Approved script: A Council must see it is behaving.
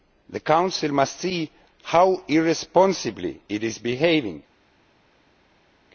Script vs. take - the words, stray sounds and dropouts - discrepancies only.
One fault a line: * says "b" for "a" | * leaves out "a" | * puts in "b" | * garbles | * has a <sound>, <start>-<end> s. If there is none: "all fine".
* says "The" for "A"
* puts in "how irresponsibly"